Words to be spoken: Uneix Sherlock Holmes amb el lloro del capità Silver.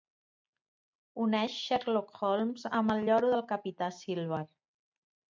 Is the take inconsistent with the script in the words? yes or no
no